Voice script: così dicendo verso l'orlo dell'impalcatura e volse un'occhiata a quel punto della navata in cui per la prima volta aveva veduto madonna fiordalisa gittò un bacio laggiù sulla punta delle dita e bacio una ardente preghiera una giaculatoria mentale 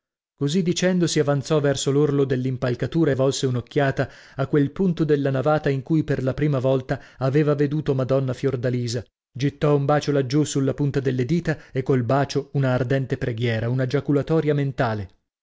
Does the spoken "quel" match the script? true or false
true